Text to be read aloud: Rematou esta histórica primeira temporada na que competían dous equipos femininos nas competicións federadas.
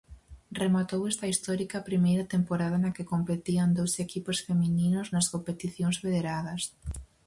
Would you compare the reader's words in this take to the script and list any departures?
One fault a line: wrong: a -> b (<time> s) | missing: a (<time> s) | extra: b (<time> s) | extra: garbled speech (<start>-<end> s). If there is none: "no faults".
no faults